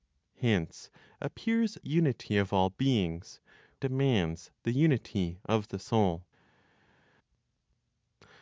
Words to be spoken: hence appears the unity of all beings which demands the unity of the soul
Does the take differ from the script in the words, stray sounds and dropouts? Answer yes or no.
yes